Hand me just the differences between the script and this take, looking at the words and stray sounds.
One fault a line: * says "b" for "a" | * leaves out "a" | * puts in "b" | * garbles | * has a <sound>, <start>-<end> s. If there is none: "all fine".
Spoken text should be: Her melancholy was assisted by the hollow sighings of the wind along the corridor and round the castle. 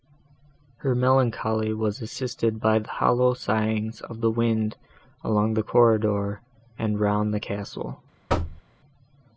* has a thud, 8.3-8.6 s